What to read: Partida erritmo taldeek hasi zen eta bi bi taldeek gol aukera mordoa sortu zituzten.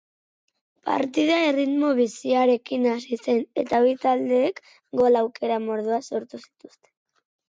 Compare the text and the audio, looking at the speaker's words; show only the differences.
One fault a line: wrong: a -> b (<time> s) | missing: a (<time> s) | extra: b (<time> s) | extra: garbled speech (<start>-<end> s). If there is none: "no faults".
wrong: taldeek -> biziarekin (2.0 s)
missing: bi (3.9 s)